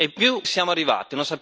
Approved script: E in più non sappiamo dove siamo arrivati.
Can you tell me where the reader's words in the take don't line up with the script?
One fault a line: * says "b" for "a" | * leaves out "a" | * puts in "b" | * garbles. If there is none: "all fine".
* leaves out "non sappiamo dove"